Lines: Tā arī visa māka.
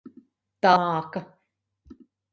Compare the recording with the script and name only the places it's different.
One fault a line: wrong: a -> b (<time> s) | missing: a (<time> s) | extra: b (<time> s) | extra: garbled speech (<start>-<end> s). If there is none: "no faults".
missing: arī visa (0.7 s)